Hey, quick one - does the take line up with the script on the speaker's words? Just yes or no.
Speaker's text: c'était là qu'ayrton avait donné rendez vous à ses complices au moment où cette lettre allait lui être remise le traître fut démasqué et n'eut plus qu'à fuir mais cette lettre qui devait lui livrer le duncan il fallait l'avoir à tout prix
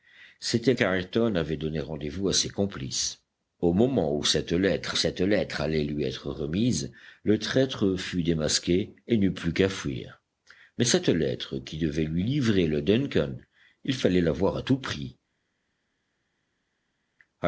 no